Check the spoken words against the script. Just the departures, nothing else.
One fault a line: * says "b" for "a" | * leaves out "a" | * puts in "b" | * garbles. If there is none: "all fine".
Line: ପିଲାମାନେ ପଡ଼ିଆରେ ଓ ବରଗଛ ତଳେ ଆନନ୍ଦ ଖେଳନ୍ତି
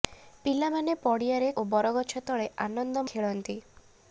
all fine